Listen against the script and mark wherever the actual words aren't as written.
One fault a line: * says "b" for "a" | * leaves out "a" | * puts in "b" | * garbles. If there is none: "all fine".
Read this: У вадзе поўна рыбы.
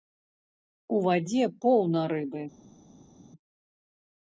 all fine